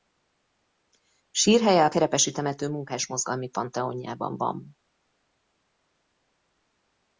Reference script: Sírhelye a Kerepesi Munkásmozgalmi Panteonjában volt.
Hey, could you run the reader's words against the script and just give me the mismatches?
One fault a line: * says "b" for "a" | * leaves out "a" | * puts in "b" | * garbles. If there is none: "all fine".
* puts in "temető"
* says "van" for "volt"